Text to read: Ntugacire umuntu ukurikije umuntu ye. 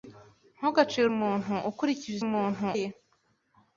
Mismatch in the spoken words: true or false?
false